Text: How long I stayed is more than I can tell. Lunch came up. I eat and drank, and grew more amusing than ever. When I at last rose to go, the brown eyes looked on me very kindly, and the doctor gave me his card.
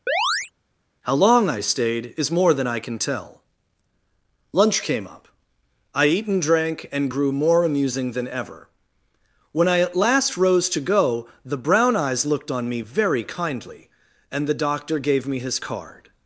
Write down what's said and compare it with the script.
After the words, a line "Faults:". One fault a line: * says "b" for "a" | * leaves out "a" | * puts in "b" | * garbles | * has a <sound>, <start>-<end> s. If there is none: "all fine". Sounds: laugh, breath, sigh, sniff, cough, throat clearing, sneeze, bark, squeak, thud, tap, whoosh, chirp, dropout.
How long I stayed is more than I can tell. Lunch came up. I eat and drank, and grew more amusing than ever. When I at last rose to go, the brown eyes looked on me very kindly, and the doctor gave me his card.
Faults:
* has a chirp, 0.1-0.5 s